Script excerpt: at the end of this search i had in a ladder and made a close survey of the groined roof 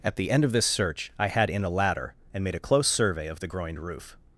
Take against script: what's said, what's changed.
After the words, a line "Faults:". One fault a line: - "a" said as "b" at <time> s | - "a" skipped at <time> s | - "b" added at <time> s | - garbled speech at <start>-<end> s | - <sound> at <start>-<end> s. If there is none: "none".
at the end of this search i had in a ladder and made a close survey of the groined roof
Faults:
none